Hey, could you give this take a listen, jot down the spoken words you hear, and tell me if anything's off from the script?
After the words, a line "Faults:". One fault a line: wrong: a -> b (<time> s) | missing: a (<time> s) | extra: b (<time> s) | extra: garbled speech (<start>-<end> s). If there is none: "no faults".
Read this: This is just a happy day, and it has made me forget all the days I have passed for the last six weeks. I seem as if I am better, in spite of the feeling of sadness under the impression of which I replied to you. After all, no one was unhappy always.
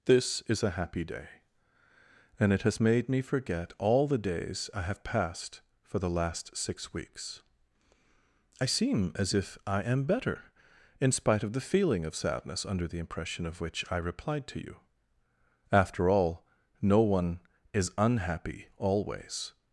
This is a happy day, and it has made me forget all the days I have passed for the last six weeks. I seem as if I am better, in spite of the feeling of sadness under the impression of which I replied to you. After all, no one is unhappy always.
Faults:
missing: just (0.6 s)
wrong: was -> is (17.7 s)